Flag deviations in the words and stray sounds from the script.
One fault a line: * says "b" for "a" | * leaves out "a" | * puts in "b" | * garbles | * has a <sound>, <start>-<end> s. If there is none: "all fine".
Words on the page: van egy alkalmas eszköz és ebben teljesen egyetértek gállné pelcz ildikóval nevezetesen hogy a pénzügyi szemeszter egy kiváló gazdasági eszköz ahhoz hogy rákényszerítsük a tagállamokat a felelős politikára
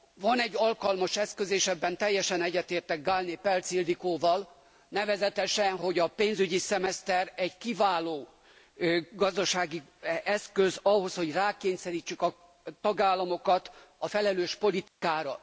* has a dropout, 14.9-15.0 s